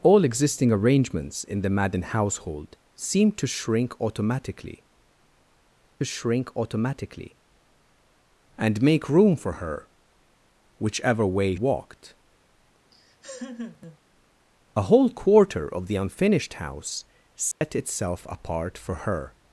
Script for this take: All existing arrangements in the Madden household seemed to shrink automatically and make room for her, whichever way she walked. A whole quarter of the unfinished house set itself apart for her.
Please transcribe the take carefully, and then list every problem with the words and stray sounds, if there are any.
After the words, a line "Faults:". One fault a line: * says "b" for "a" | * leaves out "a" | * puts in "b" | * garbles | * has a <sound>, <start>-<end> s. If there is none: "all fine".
All existing arrangements in the Madden household seemed to shrink automatically shrink automatically and make room for her, whichever way walked. A whole quarter of the unfinished house set itself apart for her.
Faults:
* puts in "shrink automatically"
* leaves out "she"
* has a laugh, 12.9-14.0 s
* has a dropout, 17.5-17.6 s